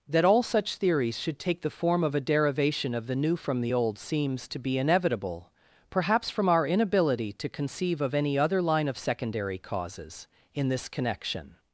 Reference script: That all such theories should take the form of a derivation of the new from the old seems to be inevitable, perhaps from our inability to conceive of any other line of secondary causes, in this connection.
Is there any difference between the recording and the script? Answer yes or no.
no